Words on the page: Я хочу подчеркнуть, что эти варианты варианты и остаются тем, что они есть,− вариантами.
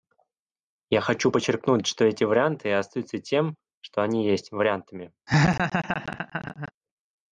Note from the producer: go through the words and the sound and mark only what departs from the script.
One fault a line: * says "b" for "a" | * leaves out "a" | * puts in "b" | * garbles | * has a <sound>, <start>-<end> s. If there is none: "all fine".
* leaves out "варианты"
* has a laugh, 5.3-6.7 s